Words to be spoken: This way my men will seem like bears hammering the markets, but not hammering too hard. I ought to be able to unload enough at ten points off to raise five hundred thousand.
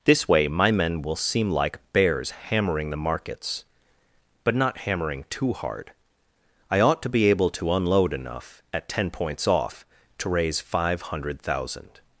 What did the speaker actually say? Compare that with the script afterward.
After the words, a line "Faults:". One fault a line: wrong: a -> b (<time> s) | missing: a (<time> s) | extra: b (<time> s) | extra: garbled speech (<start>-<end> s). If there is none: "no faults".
This way my men will seem like bears hammering the markets, but not hammering too hard. I ought to be able to unload enough at ten points off to raise five hundred thousand.
Faults:
no faults